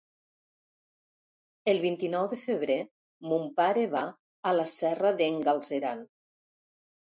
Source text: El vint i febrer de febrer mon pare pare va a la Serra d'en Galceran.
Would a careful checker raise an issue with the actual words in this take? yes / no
yes